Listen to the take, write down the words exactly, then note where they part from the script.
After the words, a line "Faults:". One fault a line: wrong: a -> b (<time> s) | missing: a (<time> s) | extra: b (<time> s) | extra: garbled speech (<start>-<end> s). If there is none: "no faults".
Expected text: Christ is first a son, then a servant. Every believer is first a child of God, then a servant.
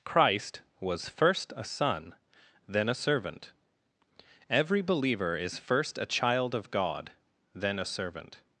Christ was first a son, then a servant. Every believer is first a child of God, then a servant.
Faults:
wrong: is -> was (0.8 s)